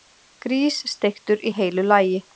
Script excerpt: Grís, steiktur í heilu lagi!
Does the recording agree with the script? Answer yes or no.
yes